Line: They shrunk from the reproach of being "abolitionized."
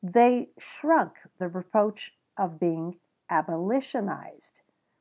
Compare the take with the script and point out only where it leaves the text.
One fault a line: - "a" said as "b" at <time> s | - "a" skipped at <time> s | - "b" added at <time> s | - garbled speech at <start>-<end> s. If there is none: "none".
- "from" skipped at 1.2 s